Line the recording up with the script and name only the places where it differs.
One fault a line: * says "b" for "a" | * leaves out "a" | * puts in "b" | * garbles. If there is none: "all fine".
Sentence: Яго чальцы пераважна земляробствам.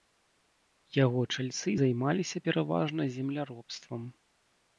* puts in "займаліся"